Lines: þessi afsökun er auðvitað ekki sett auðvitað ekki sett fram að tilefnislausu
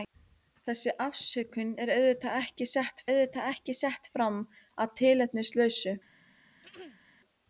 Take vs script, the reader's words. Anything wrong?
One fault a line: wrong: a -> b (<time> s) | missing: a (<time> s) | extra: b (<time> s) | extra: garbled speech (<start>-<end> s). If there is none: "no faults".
no faults